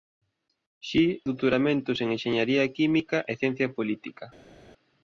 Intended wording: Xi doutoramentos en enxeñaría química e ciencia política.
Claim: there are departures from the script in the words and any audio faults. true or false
false